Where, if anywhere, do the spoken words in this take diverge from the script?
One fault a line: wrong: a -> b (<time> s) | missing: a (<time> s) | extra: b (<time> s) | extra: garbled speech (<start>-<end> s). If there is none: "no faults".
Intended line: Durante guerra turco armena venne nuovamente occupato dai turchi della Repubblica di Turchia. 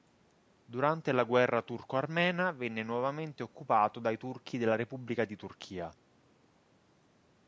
extra: la (1.1 s)